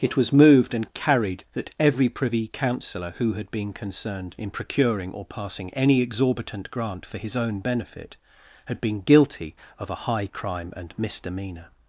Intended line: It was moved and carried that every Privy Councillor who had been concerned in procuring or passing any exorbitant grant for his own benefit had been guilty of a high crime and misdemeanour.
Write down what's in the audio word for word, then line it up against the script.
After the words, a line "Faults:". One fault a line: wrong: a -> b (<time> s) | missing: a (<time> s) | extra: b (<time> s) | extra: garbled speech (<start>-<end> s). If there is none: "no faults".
It was moved and carried that every Privy Councillor who had been concerned in procuring or passing any exorbitant grant for his own benefit had been guilty of a high crime and misdemeanour.
Faults:
no faults